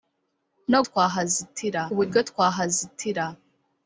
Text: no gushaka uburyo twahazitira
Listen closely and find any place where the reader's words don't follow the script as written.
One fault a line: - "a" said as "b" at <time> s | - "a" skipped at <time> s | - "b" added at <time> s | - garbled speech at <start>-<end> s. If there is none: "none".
- "gushaka" said as "twahazitira" at 0.9 s